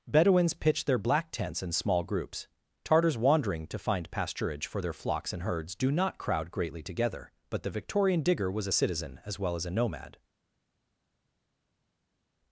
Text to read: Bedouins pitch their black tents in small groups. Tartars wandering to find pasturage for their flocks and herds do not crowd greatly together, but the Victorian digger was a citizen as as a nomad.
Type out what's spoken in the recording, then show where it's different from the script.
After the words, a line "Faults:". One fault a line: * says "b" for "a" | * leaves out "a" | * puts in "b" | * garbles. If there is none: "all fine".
Bedouins pitch their black tents in small groups. Tartars wandering to find pasturage for their flocks and herds do not crowd greatly together, but the Victorian digger was a citizen as well as a nomad.
Faults:
* puts in "well"